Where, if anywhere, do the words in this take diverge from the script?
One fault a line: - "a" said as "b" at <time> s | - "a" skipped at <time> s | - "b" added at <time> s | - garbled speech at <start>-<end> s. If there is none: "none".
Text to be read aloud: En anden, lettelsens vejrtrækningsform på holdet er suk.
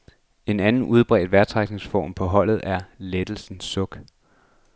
- "lettelsens" said as "udbredt" at 0.8 s
- "lettelsens" added at 3.0 s